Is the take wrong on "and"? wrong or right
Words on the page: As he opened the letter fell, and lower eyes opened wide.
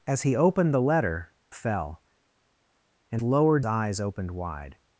right